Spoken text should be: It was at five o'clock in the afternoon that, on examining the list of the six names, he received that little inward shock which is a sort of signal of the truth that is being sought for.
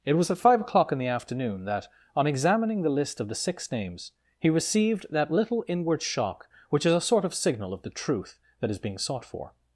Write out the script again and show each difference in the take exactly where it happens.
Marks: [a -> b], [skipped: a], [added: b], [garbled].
It was at five o'clock in the afternoon that, on examining the list of the six names, he received that little inward shock which is a sort of signal of the truth that is being sought for.